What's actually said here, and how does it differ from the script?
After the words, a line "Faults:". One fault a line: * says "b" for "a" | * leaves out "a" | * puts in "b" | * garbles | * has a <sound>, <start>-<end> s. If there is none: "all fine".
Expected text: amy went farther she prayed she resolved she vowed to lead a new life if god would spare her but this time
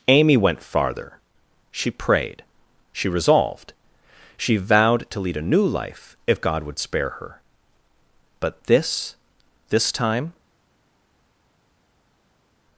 amy went farther she prayed she resolved she vowed to lead a new life if god would spare her but this this time
Faults:
* puts in "this"